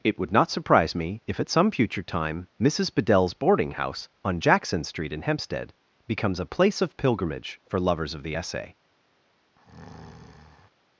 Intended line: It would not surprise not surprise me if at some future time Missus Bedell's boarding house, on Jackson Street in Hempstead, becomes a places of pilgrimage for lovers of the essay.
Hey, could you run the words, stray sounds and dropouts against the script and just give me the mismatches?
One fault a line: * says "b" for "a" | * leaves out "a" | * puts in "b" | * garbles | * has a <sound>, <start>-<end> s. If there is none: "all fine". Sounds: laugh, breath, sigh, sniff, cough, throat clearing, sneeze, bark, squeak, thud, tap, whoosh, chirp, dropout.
* leaves out "not surprise"
* says "place" for "places"
* has a breath, 9.6-10.7 s